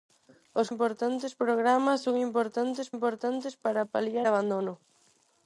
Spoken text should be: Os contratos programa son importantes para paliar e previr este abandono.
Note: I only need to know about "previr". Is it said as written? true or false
false